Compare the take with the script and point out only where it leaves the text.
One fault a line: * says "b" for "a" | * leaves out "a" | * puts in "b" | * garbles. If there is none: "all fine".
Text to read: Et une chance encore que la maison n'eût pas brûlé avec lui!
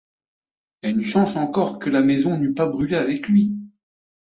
all fine